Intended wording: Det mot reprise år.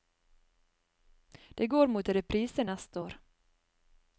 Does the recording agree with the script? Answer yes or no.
no